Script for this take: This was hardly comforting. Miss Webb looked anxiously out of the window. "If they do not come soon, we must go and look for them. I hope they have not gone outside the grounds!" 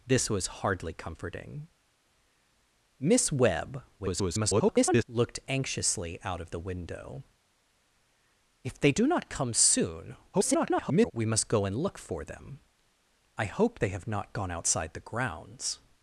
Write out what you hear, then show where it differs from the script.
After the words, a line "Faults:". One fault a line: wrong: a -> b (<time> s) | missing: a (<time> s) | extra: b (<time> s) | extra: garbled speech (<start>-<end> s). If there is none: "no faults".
This was hardly comforting. Miss Webb [garbled] looked anxiously out of the window. "If they do not come soon, [garbled] we must go and look for them. I hope they have not gone outside the grounds!"
Faults:
extra: garbled speech (4.0-5.0 s)
extra: garbled speech (10.3-11.1 s)